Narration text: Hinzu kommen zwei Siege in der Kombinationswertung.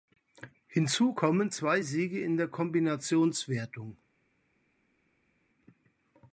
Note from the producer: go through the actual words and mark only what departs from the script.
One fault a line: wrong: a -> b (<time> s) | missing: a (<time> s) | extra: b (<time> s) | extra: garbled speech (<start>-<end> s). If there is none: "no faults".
no faults